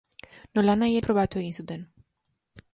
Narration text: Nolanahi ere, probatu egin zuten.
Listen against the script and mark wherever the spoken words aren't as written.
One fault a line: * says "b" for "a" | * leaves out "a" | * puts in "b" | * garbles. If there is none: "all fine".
* leaves out "ere"